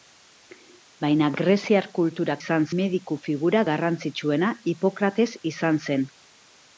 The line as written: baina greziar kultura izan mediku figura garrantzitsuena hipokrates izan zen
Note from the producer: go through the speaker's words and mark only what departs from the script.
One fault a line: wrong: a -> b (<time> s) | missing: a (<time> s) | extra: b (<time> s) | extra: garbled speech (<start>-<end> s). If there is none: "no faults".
no faults